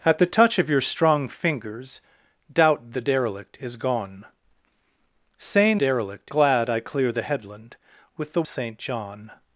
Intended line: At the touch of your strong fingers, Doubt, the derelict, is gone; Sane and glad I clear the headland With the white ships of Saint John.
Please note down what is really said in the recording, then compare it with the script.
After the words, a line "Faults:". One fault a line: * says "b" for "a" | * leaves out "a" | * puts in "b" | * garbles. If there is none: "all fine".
At the touch of your strong fingers, Doubt, the derelict, is gone; Sane derelict glad I clear the headland With the Saint John.
Faults:
* says "derelict" for "and"
* leaves out "white ships of"